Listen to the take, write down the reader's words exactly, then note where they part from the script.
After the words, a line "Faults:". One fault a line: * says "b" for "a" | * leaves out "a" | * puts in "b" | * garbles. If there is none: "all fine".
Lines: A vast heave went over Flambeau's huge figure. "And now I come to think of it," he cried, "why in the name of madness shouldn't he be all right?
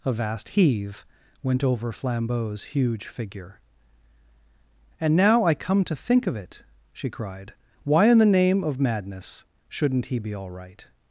A vast heave went over Flambeau's huge figure. "And now I come to think of it," she cried, "why in the name of madness shouldn't he be all right?
Faults:
* says "she" for "he"